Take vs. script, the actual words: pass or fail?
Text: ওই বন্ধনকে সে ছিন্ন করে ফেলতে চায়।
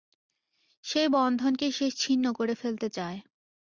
fail